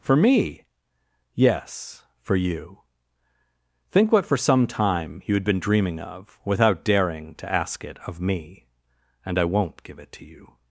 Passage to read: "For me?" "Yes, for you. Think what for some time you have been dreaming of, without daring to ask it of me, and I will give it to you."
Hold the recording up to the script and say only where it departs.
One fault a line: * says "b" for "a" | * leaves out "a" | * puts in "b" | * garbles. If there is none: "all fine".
* says "had" for "have"
* says "won't" for "will"